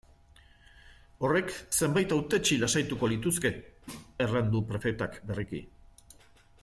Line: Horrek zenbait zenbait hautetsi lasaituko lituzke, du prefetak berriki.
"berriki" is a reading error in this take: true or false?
false